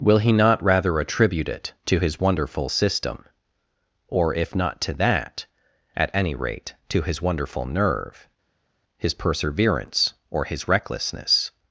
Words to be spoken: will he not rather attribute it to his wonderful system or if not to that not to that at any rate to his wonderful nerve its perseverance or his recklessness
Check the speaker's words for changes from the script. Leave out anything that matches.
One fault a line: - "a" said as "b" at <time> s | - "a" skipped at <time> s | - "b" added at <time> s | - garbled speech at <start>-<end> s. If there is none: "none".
- "not to that" skipped at 5.5 s
- "its" said as "his" at 9.0 s